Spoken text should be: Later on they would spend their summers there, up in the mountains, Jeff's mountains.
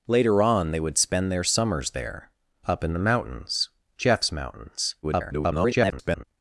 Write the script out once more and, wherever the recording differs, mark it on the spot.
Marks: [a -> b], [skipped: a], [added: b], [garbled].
Later on they would spend their summers there, up in the mountains, Jeff's mountains. [garbled]